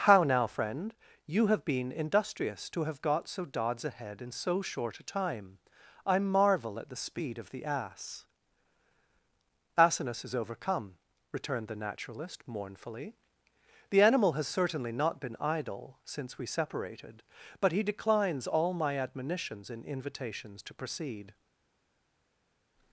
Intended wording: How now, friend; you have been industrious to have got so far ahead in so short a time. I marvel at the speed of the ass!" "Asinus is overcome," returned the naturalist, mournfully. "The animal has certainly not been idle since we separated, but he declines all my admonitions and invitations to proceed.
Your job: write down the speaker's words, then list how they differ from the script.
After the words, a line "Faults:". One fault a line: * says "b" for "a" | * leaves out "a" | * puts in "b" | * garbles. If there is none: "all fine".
How now, friend; you have been industrious to have got so dods ahead in so short a time. I marvel at the speed of the ass!" "Asinus is overcome," returned the naturalist, mournfully. "The animal has certainly not been idle since we separated, but he declines all my admonitions and invitations to proceed.
Faults:
* says "dods" for "far"